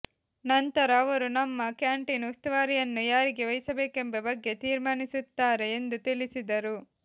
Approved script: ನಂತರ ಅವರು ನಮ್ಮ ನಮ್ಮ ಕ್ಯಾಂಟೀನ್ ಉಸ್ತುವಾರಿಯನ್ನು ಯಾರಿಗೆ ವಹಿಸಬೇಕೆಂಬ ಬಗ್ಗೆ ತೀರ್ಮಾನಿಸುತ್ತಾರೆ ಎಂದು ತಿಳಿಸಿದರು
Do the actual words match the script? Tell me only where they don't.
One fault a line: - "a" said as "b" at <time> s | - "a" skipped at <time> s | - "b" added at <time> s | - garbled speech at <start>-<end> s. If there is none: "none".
- "ನಮ್ಮ" skipped at 1.7 s